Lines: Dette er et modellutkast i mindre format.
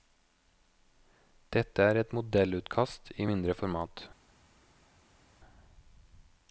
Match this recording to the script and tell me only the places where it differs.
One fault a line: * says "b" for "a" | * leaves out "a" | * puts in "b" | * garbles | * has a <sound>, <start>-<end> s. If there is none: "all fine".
all fine